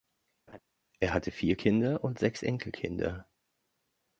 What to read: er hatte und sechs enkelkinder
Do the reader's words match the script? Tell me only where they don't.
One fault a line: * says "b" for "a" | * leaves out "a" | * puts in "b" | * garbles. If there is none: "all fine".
* puts in "vier kinder"